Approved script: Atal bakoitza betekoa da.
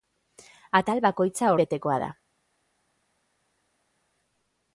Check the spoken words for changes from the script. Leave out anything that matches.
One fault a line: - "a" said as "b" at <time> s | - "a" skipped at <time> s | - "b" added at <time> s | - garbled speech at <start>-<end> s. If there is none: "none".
none